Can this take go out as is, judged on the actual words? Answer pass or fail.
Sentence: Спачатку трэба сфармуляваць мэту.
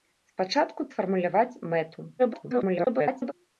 fail